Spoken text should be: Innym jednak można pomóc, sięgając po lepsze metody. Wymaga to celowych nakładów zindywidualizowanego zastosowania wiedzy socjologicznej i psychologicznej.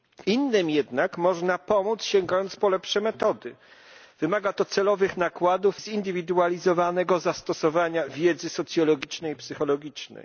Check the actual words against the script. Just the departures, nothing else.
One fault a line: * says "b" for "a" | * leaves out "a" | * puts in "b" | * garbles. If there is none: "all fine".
all fine